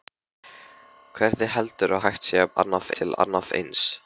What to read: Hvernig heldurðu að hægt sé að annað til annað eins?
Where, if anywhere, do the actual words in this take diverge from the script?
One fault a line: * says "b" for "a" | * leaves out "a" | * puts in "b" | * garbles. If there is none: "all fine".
all fine